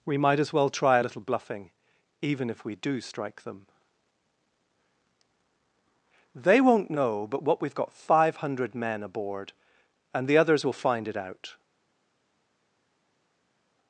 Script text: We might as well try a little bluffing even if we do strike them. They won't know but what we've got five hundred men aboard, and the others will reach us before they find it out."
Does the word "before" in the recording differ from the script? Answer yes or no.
yes